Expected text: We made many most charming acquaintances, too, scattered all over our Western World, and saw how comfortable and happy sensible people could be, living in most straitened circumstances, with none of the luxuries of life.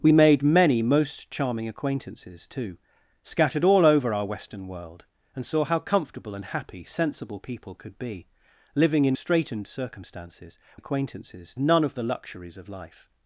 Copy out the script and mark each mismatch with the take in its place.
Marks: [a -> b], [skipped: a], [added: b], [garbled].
We made many most charming acquaintances, too, scattered all over our Western World, and saw how comfortable and happy sensible people could be, living in [skipped: most] straitened circumstances, [with -> acquaintances] none of the luxuries of life.